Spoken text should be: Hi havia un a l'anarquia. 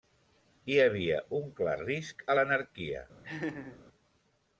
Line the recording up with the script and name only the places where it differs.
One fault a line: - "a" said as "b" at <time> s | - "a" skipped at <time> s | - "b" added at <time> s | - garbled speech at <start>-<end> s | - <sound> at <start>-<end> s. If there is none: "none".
- "clar risc" added at 1.6 s
- laugh at 3.2-3.8 s